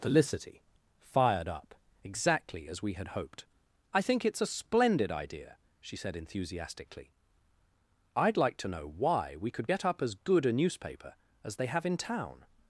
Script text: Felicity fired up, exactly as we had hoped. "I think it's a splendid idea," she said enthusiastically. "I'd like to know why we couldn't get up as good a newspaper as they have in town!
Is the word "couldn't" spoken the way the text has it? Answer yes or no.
no